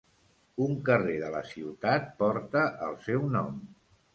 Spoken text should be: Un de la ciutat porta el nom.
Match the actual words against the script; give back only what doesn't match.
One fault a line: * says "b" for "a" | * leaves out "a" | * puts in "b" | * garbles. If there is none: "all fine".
* puts in "carrer"
* puts in "seu"